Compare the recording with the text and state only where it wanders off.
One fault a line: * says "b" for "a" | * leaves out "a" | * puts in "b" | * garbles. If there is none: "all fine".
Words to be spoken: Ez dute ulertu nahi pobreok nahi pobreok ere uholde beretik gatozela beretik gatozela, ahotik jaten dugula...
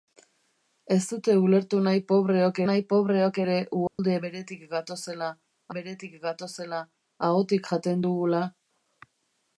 all fine